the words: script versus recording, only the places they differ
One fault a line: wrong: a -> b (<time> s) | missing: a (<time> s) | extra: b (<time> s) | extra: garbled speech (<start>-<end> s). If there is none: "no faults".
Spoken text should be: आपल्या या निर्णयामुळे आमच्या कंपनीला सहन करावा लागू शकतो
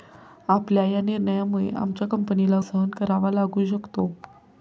no faults